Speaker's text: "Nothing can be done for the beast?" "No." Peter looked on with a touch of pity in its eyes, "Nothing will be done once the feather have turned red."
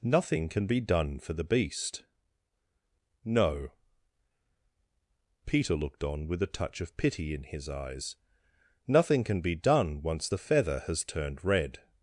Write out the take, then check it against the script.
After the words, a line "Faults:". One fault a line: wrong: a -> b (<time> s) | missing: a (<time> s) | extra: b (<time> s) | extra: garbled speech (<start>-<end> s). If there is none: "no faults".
"Nothing can be done for the beast?" "No." Peter looked on with a touch of pity in his eyes, "Nothing can be done once the feather has turned red."
Faults:
wrong: its -> his (7.4 s)
wrong: will -> can (9.2 s)
wrong: have -> has (10.9 s)